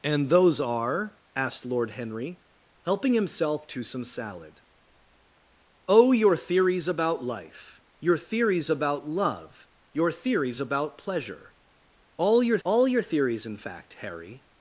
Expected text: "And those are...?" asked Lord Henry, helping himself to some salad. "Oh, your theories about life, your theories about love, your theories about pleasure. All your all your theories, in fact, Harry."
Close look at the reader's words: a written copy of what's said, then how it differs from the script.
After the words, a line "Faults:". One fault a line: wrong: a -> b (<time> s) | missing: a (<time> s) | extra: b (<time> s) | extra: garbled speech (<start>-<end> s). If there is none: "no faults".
"And those are...?" asked Lord Henry, helping himself to some salad. "Oh, your theories about life, your theories about love, your theories about pleasure. All your all your theories, in fact, Harry."
Faults:
no faults